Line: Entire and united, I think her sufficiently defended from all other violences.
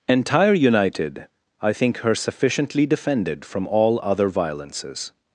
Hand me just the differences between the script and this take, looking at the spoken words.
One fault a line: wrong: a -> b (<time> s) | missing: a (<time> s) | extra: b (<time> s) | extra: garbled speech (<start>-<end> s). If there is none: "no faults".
missing: and (0.6 s)